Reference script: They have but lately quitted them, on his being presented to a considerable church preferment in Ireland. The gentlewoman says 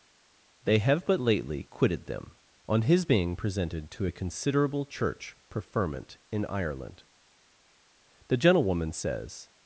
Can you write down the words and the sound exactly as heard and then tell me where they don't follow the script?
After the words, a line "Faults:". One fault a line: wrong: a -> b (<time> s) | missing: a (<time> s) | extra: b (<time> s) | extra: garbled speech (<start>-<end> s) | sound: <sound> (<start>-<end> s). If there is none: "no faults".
They have but lately quitted them, on his being presented to a considerable church preferment in Ireland. The gentlewoman says
Faults:
no faults